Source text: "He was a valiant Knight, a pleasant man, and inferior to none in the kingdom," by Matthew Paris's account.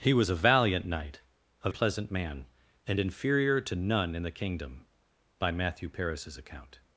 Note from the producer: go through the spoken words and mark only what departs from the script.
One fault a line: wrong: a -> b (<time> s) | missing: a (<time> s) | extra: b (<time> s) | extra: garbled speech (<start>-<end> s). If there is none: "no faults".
no faults